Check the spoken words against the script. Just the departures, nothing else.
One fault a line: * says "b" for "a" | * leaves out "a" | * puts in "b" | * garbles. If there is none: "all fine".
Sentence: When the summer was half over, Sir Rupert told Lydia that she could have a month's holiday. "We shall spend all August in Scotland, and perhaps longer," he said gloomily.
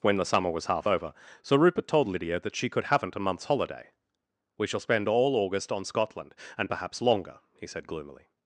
* says "haven't" for "have"
* says "on" for "in"